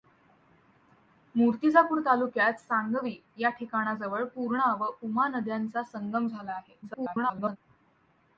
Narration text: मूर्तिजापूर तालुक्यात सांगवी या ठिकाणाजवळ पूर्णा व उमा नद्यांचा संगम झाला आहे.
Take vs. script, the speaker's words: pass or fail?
fail